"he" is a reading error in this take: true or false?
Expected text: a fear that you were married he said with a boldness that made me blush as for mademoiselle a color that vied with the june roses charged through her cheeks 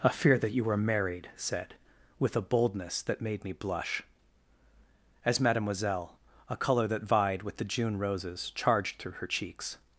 true